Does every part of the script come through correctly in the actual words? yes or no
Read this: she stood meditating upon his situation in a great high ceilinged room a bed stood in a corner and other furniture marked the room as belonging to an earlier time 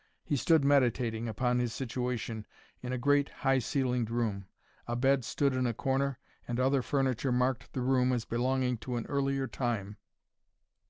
no